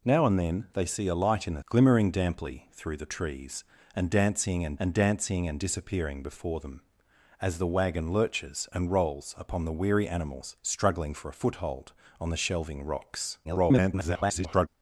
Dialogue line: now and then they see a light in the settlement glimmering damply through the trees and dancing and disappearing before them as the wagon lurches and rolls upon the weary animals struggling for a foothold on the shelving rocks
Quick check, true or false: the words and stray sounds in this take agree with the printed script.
false